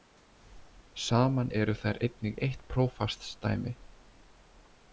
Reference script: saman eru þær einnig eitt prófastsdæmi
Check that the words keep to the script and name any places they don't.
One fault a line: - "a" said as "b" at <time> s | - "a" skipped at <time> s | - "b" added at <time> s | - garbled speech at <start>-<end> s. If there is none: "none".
none